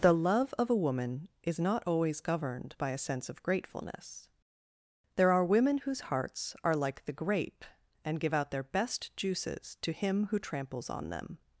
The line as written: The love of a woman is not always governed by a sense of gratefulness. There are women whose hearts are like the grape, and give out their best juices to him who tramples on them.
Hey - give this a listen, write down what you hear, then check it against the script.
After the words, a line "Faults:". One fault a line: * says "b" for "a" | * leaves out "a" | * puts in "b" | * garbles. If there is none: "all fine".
The love of a woman is not always governed by a sense of gratefulness. There are women whose hearts are like the grape, and give out their best juices to him who tramples on them.
Faults:
all fine